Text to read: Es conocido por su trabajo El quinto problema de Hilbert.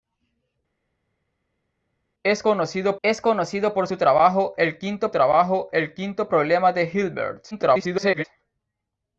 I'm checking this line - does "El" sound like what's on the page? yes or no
yes